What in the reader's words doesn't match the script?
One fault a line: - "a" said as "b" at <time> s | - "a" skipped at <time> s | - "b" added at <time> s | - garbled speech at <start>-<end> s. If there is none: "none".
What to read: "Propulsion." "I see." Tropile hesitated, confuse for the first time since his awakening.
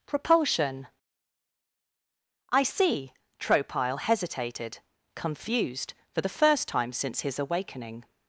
- "confuse" said as "confused" at 5.2 s